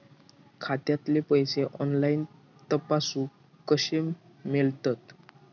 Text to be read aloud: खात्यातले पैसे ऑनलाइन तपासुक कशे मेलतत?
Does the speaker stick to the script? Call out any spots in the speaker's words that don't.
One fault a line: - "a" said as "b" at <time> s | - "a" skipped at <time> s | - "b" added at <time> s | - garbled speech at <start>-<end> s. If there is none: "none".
none